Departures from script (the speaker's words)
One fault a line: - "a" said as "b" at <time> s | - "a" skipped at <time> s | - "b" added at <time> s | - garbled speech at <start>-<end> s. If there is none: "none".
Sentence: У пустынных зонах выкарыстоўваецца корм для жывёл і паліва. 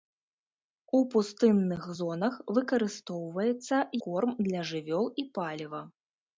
none